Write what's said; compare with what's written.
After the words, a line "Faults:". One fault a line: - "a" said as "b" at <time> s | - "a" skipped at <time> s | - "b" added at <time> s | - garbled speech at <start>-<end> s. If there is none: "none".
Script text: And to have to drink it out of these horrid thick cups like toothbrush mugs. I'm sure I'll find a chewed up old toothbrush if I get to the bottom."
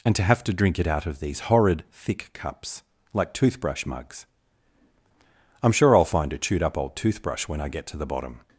And to have to drink it out of these horrid thick cups like toothbrush mugs. I'm sure I'll find a chewed up old toothbrush when I get to the bottom."
Faults:
- "if" said as "when" at 7.5 s